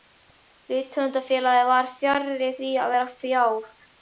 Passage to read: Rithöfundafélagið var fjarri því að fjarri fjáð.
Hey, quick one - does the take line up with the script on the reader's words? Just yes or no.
no